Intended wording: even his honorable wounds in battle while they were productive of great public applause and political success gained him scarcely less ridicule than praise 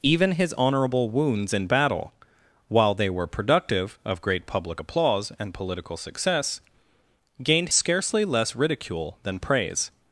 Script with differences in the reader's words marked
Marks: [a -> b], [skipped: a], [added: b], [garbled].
even his honorable wounds in battle while they were productive of great public applause and political success gained [skipped: him] scarcely less ridicule than praise